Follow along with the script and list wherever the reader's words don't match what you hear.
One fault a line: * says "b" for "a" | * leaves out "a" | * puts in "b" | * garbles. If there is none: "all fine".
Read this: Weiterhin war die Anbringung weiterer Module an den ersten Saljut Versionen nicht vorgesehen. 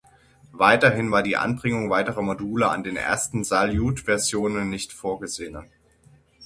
all fine